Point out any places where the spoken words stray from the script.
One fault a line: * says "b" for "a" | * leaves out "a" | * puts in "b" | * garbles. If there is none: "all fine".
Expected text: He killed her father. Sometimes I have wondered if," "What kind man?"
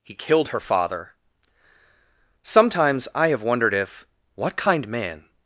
all fine